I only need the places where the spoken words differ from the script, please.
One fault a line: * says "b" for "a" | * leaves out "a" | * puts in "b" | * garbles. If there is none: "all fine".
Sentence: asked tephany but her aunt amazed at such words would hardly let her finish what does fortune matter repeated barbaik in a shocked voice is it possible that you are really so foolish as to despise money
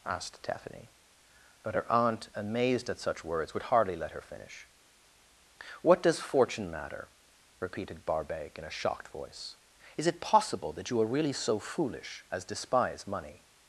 * leaves out "to"